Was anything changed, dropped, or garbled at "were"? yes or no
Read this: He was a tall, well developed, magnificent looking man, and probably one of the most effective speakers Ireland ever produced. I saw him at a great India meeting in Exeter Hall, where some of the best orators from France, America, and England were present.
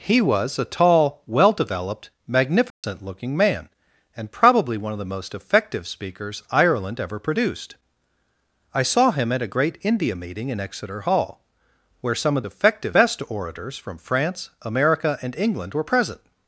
no